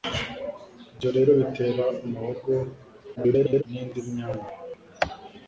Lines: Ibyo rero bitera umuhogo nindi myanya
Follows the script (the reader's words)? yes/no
no